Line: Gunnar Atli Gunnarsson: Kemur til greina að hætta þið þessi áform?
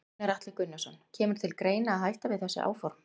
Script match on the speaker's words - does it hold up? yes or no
no